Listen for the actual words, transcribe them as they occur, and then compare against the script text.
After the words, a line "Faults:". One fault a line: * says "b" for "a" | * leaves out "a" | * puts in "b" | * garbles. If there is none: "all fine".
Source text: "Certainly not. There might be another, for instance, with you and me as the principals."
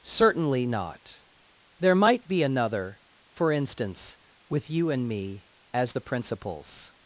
"Certainly not. There might be another, for instance, with you and me as the principals."
Faults:
all fine